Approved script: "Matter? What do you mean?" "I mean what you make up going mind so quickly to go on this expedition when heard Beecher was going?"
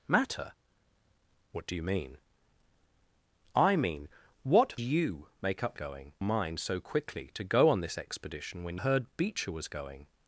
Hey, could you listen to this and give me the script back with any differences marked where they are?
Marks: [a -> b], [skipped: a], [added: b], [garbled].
"Matter? What do you mean?" "I mean what you make up going mind so quickly to go on this expedition when heard Beecher was going?"